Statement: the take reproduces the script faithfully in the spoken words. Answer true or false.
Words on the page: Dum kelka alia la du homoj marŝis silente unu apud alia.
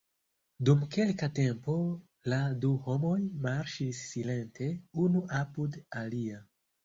false